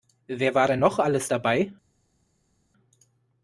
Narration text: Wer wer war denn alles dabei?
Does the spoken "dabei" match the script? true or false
true